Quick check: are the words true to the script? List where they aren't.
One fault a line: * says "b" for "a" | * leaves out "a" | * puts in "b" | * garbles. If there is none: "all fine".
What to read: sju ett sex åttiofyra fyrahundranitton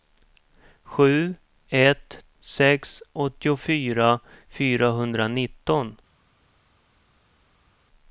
all fine